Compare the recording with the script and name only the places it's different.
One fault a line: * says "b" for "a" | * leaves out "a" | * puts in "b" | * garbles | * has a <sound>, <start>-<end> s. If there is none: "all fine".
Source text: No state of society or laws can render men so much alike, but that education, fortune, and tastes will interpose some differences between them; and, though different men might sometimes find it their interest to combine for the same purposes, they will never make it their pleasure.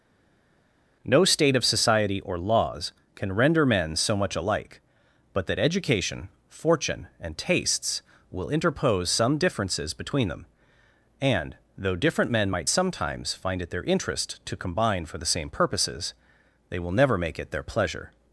all fine